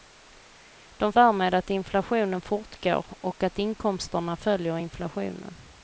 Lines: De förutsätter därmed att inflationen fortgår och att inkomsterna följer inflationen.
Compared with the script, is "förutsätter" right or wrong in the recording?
wrong